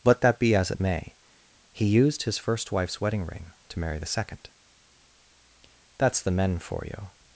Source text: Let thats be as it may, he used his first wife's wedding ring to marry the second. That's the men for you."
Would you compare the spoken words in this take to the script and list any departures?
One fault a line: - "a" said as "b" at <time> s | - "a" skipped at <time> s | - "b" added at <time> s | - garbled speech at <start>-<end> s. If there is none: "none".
- "thats" said as "that" at 0.2 s